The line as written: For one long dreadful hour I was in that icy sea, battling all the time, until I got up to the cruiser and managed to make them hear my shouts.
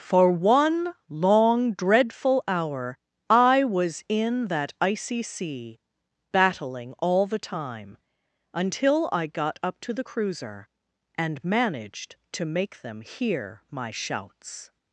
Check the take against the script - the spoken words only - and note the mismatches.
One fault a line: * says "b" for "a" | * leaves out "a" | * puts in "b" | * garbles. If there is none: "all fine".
all fine